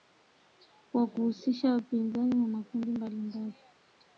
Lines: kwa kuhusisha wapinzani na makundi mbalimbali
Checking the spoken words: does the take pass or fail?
pass